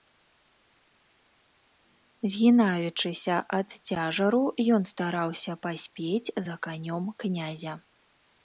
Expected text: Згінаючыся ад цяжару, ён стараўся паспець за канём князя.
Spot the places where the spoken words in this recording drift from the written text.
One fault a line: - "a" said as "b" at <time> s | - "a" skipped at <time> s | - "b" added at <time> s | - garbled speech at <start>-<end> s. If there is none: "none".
none